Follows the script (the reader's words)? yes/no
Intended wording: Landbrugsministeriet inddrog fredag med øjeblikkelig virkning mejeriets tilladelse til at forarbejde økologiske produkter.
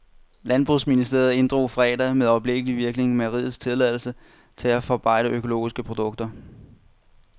yes